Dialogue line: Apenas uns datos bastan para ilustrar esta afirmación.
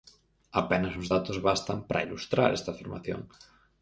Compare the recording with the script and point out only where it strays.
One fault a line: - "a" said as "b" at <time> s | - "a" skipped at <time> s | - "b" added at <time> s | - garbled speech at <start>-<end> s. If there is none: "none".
none